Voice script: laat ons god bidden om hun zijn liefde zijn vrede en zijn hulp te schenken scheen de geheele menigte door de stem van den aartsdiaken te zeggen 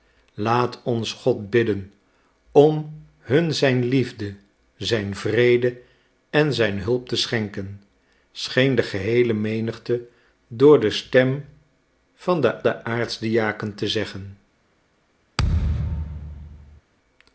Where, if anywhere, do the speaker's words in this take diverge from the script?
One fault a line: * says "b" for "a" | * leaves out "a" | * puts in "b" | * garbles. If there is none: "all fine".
* puts in "den"